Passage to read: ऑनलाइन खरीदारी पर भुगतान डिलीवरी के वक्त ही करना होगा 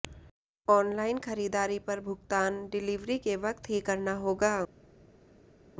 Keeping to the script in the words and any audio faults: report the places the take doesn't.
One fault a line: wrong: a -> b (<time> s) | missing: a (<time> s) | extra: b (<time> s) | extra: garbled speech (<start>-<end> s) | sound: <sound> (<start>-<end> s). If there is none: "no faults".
no faults